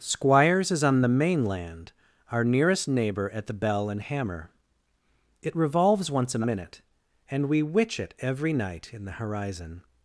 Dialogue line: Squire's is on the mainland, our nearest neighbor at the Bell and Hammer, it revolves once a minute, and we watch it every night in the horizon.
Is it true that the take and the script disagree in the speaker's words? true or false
true